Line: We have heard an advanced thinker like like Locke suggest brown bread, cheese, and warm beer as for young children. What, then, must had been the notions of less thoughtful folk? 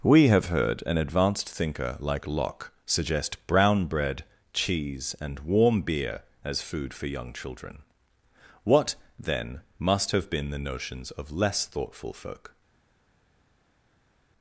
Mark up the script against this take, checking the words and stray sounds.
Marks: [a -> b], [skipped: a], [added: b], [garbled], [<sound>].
We have heard an advanced thinker like [skipped: like] Locke suggest brown bread, cheese, and warm beer as [added: food] for young children. What, then, must [had -> have] been the notions of less thoughtful folk?